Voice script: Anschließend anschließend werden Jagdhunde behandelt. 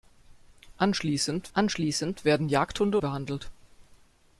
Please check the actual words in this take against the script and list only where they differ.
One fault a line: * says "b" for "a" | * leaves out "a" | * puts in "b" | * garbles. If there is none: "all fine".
all fine